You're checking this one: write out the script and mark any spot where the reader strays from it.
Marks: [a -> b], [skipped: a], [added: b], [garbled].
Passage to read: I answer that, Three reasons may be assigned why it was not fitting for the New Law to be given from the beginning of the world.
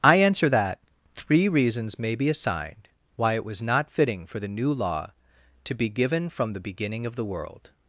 I answer that, Three reasons may be assigned why it was not fitting for the New Law to be given from the beginning of the world.